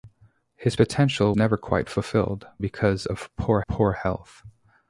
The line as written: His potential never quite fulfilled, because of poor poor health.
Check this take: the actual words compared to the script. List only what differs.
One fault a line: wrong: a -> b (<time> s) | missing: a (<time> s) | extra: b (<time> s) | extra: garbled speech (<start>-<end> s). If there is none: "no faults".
no faults